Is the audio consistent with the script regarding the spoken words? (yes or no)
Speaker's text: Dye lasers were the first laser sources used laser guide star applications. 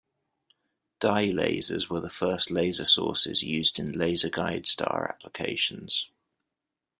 no